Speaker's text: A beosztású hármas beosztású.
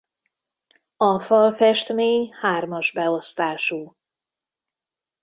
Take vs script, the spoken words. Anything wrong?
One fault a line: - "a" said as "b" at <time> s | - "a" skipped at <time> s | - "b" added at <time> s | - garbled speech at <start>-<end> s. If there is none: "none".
- "beosztású" said as "falfestmény" at 1.2 s